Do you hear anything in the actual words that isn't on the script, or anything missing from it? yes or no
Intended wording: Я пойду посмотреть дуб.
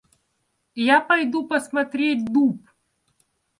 no